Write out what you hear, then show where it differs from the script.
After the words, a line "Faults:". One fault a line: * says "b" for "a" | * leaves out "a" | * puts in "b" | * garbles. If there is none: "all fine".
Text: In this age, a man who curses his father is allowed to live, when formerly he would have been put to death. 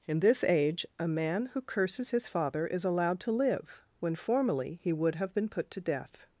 In this age, a man who curses his father is allowed to live, when formerly he would have been put to death.
Faults:
all fine